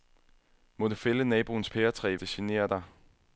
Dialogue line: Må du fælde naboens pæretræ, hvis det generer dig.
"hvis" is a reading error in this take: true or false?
true